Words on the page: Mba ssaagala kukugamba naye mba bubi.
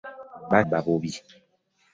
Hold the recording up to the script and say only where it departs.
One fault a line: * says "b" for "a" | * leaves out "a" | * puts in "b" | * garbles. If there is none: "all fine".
* leaves out "ssaagala kukugamba naye"